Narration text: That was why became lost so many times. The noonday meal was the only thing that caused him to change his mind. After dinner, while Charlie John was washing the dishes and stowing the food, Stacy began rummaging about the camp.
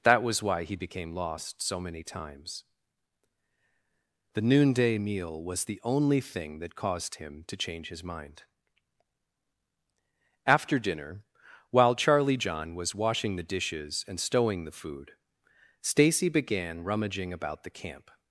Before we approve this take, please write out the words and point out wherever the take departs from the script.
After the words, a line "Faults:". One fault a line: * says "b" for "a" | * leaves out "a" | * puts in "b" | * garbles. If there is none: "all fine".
That was why he became lost so many times. The noonday meal was the only thing that caused him to change his mind. After dinner, while Charlie John was washing the dishes and stowing the food, Stacy began rummaging about the camp.
Faults:
* puts in "he"